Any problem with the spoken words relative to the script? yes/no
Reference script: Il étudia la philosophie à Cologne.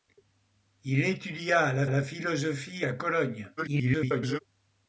yes